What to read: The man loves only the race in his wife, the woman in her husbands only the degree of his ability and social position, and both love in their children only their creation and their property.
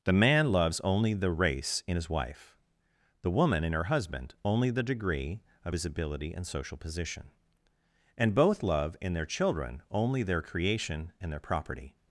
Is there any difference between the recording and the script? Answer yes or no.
yes